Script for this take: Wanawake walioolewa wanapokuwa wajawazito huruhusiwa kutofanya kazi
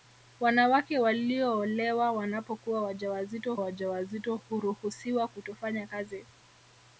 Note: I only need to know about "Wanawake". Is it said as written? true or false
true